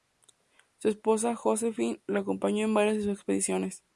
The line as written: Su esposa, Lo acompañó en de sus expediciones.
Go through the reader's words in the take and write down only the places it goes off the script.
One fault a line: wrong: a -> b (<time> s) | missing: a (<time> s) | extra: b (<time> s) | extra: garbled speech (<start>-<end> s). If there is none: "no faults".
extra: Josephine (1.4 s)
extra: varias (2.7 s)